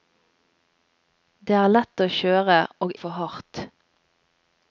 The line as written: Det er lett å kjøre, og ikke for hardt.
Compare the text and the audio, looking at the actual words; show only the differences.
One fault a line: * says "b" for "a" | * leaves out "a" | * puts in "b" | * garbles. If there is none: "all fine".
* leaves out "ikke"